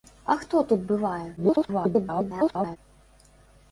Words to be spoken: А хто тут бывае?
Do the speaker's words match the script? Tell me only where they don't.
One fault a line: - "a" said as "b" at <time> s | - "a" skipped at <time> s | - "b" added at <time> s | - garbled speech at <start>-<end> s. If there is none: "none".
- garbled speech at 1.4-2.8 s